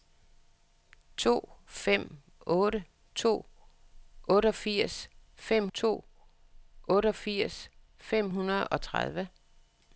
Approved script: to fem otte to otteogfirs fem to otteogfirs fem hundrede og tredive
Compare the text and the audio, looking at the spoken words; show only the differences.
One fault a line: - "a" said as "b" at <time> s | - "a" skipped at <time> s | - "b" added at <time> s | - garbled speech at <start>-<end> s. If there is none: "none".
none